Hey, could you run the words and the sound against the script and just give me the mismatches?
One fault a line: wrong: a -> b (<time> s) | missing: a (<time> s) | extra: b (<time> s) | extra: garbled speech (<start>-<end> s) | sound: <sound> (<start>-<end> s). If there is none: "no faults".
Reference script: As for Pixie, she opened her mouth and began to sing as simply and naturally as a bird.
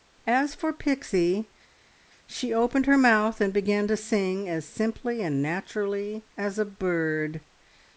no faults